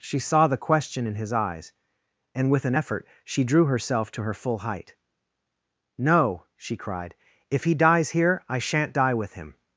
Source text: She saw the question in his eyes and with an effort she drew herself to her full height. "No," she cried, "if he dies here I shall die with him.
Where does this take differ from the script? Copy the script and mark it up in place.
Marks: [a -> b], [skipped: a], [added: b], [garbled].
She saw the question in his eyes and with an effort she drew herself to her full height. "No," she cried, "if he dies here I [shall -> shan't] die with him.